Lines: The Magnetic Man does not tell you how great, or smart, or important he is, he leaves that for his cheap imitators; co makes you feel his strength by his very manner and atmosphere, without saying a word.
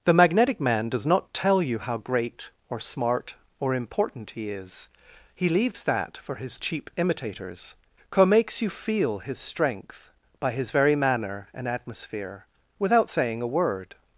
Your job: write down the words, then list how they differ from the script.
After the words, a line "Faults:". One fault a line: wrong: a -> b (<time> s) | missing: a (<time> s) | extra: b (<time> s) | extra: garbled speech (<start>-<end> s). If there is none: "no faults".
The Magnetic Man does not tell you how great, or smart, or important he is, he leaves that for his cheap imitators; co makes you feel his strength by his very manner and atmosphere, without saying a word.
Faults:
no faults